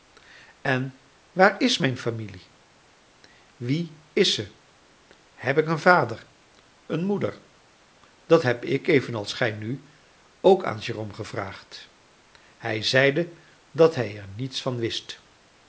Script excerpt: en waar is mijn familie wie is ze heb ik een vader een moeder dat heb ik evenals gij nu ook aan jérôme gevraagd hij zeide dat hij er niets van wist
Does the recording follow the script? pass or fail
pass